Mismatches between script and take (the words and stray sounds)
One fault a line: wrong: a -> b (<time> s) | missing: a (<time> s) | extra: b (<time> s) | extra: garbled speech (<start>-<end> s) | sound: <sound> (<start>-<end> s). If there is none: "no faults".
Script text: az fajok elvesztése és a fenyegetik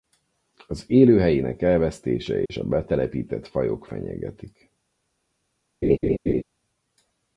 wrong: fajok -> élőhelyének (0.9 s)
sound: dropout (2.5-2.5 s)
extra: betelepített fajok (2.6 s)
sound: laugh (5.8-6.4 s)